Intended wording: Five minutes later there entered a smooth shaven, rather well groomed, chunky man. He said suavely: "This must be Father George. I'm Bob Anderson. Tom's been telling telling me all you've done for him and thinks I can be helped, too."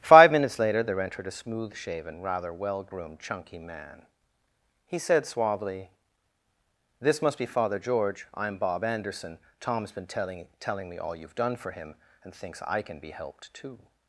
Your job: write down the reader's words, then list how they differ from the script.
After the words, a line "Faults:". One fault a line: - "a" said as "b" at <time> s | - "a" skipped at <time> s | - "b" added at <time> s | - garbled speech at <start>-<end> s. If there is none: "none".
Five minutes later there entered a smooth shaven, rather well groomed, chunky man. He said suavely: "This must be Father George. I'm Bob Anderson. Tom's been telling telling me all you've done for him and thinks I can be helped, too."
Faults:
none